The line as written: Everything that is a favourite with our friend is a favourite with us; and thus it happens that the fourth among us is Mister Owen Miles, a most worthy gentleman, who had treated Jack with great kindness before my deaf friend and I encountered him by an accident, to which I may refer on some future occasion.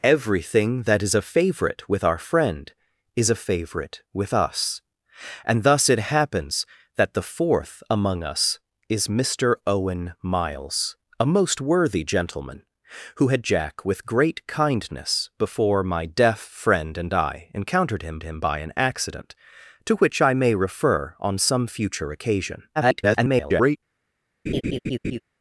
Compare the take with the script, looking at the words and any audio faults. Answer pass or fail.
fail